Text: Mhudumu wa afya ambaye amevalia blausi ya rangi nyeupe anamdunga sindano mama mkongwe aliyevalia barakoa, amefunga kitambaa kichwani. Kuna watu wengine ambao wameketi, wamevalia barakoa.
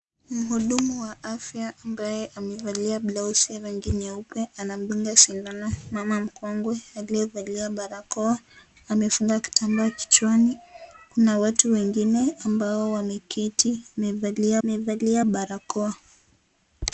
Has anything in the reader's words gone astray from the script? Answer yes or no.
yes